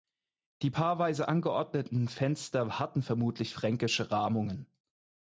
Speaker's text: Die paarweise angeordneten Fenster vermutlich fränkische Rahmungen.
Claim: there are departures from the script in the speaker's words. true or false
true